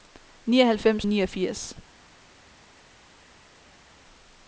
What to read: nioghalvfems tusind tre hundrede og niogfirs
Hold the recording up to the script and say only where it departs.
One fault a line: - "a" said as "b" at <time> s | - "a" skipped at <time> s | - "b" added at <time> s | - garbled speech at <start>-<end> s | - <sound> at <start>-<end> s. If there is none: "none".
- "tusind tre hundrede" skipped at 1.1 s